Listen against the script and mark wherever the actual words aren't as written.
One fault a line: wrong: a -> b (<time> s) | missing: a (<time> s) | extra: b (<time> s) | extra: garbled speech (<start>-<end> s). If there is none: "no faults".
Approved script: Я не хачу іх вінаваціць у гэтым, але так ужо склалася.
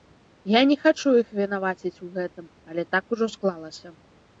no faults